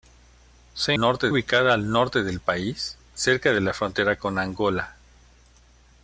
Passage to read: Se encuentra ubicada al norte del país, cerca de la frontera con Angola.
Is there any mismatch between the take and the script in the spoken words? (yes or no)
yes